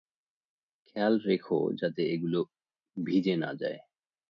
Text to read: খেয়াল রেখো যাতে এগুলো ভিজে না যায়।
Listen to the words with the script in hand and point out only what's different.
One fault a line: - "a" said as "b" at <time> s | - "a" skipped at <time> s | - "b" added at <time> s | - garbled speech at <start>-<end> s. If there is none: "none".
none